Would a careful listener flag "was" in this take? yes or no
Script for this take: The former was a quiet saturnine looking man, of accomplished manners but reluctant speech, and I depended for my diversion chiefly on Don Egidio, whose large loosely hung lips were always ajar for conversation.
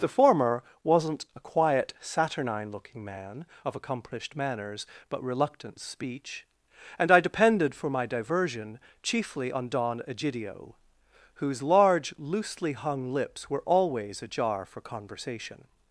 yes